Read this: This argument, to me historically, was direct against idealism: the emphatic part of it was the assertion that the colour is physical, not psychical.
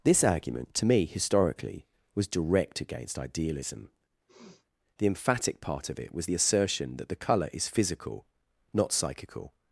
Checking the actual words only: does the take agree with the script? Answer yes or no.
yes